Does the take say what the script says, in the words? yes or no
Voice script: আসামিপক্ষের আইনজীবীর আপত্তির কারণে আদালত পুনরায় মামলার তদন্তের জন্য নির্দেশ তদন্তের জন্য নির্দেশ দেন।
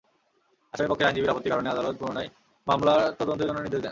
no